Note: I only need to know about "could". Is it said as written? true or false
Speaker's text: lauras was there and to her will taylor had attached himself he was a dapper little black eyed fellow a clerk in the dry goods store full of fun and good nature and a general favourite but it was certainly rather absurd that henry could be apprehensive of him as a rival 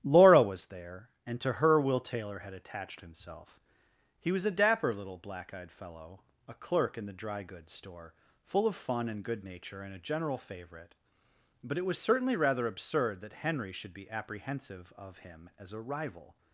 false